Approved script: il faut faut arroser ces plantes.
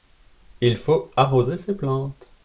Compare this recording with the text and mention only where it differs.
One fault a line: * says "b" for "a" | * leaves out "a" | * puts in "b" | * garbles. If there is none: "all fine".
* leaves out "faut"